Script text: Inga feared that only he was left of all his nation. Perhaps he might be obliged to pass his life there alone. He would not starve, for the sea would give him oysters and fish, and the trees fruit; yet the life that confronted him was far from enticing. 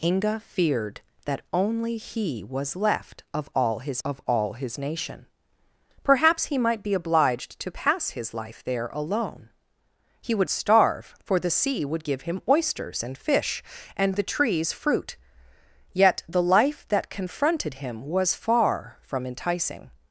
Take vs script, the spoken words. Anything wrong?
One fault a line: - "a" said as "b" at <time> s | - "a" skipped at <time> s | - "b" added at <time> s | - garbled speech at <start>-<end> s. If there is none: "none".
- "of all his" added at 4.0 s
- "not" skipped at 10.5 s